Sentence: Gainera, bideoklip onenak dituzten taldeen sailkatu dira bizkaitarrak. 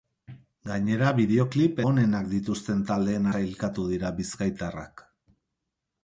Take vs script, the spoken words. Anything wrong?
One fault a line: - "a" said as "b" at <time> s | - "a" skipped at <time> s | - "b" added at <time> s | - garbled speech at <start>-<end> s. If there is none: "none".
none